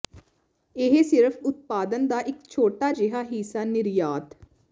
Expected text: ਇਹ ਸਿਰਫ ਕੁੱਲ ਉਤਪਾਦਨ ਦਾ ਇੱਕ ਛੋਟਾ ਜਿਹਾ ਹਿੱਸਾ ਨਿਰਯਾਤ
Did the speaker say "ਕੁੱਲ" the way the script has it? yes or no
no